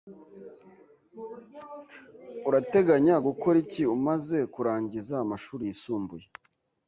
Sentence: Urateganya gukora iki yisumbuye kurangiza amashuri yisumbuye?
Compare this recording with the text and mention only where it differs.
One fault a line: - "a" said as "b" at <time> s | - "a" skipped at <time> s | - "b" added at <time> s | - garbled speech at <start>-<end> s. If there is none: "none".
- "yisumbuye" said as "umaze" at 4.0 s